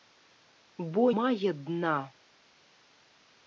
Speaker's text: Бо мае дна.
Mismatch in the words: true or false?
false